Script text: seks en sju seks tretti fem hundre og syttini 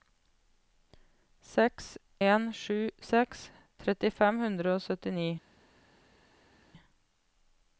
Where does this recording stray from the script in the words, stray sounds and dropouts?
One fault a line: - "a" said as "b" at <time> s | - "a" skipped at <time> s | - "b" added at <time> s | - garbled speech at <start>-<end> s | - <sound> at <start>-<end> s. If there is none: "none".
none